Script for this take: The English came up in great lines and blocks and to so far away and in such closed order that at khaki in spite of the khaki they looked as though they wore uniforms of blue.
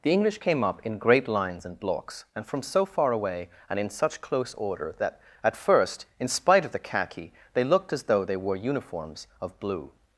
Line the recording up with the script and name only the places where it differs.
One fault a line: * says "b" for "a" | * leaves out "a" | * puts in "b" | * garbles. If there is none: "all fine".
* says "from" for "to"
* says "close" for "closed"
* says "first" for "khaki"